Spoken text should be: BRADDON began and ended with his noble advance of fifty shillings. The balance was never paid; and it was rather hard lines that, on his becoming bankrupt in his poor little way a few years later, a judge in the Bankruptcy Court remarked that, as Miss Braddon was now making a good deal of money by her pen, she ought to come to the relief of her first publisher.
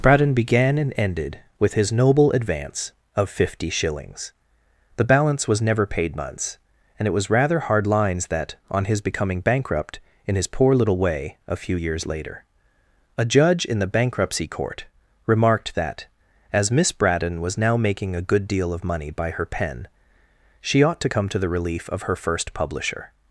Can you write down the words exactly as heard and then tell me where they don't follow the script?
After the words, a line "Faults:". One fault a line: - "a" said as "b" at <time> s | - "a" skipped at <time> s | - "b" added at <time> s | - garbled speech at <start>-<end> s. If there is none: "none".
BRADDON began and ended with his noble advance of fifty shillings. The balance was never paid; months and it was rather hard lines that, on his becoming bankrupt in his poor little way a few years later, a judge in the Bankruptcy Court remarked that, as Miss Braddon was now making a good deal of money by her pen, she ought to come to the relief of her first publisher.
Faults:
- "months" added at 6.2 s